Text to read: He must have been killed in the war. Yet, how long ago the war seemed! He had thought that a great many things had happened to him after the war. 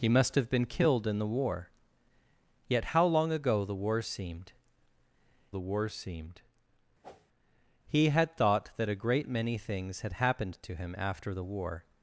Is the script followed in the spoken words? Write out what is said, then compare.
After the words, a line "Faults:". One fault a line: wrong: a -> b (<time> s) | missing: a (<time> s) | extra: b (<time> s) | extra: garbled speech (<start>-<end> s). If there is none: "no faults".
He must have been killed in the war. Yet, how long ago the war seemed the war seemed! He had thought that a great many things had happened to him after the war.
Faults:
extra: the war seemed (5.5 s)